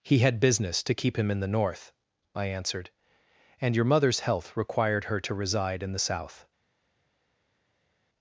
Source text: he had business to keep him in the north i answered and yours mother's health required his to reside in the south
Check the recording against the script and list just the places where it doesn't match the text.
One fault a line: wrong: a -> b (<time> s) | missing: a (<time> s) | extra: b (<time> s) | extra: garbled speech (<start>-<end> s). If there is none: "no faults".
wrong: yours -> your (3.8 s)
wrong: his -> her (5.0 s)